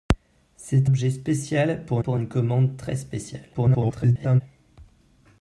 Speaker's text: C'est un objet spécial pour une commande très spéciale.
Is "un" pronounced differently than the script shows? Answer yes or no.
yes